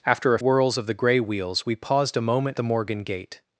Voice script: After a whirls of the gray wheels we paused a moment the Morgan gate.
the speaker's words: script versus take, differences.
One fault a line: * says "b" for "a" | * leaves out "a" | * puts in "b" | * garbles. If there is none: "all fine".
all fine